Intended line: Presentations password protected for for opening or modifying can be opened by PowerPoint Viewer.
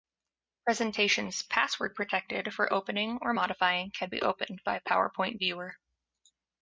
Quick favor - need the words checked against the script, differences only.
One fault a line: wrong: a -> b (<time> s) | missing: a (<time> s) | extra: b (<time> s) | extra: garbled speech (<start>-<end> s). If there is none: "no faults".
missing: for (2.7 s)